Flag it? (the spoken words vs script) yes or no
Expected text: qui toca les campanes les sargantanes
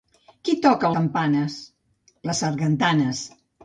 yes